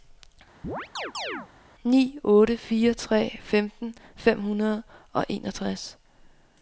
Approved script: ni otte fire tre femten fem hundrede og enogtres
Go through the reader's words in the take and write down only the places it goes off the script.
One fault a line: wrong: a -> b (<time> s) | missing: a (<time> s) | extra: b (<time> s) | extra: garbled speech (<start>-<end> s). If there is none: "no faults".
no faults